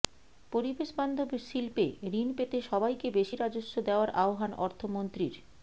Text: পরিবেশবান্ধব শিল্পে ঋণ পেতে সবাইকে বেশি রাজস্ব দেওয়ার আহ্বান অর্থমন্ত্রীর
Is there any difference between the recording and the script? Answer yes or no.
no